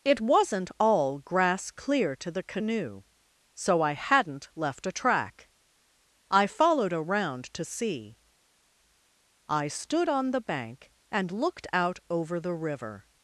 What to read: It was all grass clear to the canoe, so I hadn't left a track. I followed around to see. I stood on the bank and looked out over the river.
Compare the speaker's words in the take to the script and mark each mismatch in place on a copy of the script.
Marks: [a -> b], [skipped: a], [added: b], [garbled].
It [was -> wasn't] all grass clear to the canoe, so I hadn't left a track. I followed around to see. I stood on the bank and looked out over the river.